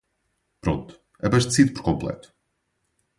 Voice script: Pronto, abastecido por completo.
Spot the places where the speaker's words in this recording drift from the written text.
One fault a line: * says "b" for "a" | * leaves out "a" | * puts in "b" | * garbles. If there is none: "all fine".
all fine